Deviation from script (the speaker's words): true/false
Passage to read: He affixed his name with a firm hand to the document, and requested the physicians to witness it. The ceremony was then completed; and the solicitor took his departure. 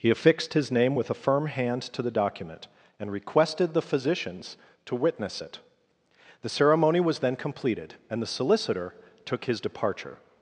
false